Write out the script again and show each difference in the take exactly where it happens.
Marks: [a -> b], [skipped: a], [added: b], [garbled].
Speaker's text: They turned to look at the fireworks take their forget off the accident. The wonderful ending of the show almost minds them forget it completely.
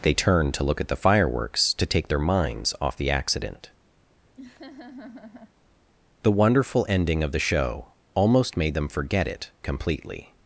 They turned to look at the fireworks [added: to] take their [forget -> minds] off the accident. The wonderful ending of the show almost [minds -> made] them forget it completely.